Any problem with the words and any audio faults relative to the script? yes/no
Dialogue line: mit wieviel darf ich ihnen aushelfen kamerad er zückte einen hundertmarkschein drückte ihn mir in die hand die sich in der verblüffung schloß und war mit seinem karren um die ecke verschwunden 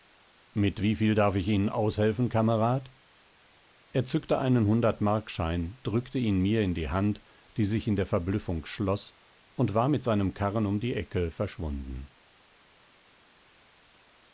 no